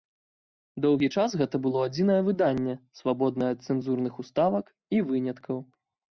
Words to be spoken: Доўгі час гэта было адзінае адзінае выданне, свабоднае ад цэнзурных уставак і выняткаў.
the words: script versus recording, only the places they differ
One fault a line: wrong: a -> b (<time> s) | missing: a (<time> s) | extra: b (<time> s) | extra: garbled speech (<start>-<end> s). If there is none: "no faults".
missing: адзінае (2.2 s)